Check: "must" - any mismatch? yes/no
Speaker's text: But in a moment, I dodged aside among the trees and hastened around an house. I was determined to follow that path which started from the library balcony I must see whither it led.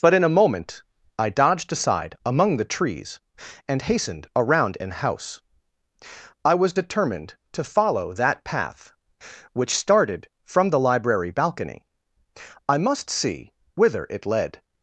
no